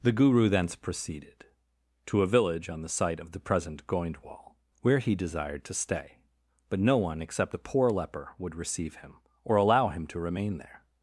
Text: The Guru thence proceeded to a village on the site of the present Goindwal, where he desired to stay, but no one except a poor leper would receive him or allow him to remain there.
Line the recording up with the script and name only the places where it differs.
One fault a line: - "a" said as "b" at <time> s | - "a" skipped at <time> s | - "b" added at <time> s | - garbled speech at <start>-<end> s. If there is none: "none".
none